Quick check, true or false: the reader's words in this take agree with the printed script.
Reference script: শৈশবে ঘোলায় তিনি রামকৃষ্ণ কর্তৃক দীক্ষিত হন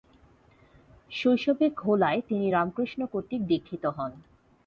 true